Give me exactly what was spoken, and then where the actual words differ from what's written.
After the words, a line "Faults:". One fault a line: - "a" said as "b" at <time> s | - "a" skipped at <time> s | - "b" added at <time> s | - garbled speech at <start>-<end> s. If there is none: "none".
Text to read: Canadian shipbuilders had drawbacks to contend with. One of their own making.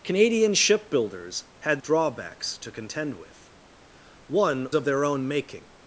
Canadian shipbuilders had drawbacks to contend with. One of their own making.
Faults:
none